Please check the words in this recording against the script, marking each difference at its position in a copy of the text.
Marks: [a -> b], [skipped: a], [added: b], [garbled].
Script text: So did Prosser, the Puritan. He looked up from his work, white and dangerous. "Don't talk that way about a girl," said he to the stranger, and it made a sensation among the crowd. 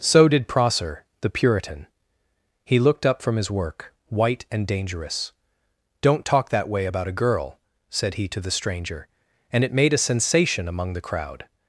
So did Prosser, the Puritan. He looked up from his work, white and dangerous. "Don't talk that way about a girl," said he to the stranger, and it made a sensation among the crowd.